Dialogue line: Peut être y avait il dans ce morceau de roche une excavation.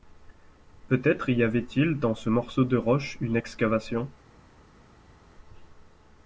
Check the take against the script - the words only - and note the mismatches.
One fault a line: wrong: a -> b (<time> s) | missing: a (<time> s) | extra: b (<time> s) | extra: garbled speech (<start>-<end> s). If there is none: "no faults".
no faults